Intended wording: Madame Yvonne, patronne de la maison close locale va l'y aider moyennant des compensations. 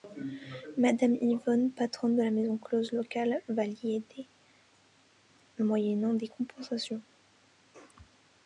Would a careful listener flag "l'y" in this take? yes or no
no